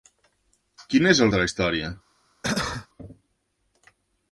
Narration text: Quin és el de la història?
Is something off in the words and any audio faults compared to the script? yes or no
yes